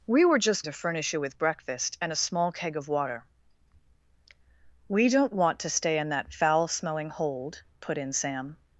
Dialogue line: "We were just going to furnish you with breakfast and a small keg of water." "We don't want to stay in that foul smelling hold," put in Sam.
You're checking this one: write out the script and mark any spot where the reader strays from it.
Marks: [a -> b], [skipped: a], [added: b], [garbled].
"We were just [skipped: going] to furnish you with breakfast and a small keg of water." "We don't want to stay in that foul smelling hold," put in Sam.